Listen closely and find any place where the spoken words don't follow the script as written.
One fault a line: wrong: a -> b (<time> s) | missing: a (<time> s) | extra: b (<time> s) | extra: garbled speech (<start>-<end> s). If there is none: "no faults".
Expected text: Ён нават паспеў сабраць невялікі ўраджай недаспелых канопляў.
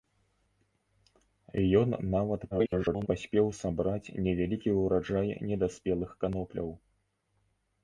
extra: garbled speech (2.5-3.1 s)